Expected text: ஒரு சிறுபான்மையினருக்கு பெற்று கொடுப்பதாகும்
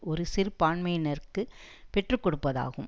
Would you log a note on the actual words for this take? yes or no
no